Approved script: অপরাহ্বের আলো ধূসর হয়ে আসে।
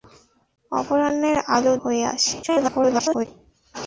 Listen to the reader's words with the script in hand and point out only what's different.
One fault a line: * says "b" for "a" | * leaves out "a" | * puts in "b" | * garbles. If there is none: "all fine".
* leaves out "ধূসর"
* garbles